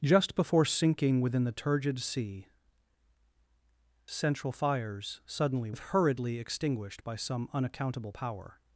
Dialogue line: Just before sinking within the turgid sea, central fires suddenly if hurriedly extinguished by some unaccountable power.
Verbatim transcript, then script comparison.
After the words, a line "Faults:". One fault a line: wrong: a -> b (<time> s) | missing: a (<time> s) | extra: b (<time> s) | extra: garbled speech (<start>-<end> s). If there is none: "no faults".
Just before sinking within the turgid sea, central fires suddenly if hurriedly extinguished by some unaccountable power.
Faults:
no faults